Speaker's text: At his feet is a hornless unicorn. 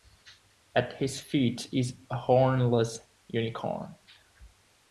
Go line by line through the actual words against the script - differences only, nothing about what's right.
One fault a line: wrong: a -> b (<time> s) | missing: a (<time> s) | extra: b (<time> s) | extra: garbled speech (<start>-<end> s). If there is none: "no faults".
no faults